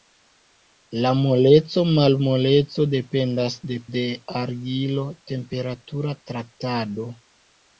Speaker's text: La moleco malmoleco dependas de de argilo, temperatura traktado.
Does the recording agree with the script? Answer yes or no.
yes